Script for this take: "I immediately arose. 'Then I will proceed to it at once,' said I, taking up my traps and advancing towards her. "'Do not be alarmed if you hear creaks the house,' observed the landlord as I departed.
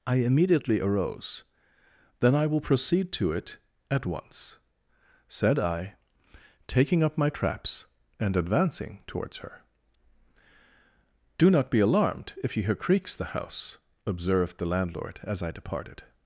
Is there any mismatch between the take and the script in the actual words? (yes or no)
no